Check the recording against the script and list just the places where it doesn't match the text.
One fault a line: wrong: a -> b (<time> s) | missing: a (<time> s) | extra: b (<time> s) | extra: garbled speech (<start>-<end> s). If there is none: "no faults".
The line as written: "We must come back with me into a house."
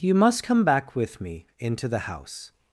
wrong: We -> You (0.0 s)
wrong: a -> the (1.9 s)